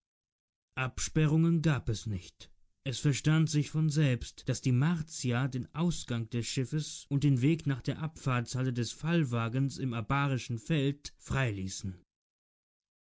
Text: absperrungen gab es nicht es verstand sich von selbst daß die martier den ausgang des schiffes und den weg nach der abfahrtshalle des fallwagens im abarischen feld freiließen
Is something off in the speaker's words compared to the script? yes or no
no